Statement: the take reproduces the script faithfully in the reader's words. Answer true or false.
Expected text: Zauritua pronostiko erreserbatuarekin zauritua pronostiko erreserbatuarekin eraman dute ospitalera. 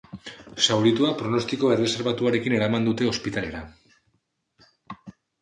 false